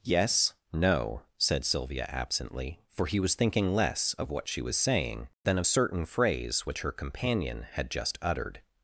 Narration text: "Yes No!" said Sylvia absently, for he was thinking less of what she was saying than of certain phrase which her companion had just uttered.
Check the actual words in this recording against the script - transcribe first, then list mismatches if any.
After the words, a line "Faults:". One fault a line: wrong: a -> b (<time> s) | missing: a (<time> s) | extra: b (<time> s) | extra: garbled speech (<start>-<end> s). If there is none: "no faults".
"Yes No!" said Sylvia absently, for he was thinking less of what she was saying than of certain phrase which her companion had just uttered.
Faults:
no faults